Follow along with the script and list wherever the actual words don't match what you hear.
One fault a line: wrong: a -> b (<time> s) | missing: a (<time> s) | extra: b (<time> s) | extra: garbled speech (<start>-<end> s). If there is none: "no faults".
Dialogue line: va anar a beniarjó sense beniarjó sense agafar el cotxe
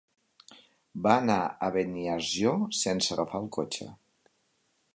missing: beniarjó sense (3.1 s)